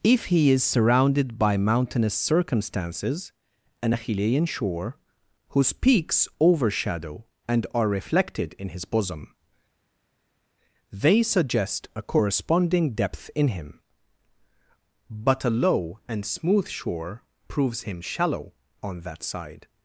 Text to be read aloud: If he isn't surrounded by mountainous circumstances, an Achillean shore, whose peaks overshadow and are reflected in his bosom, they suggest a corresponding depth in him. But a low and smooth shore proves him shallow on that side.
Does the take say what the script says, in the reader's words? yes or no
no